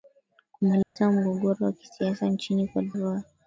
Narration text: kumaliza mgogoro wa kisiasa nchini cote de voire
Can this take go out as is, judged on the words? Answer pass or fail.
fail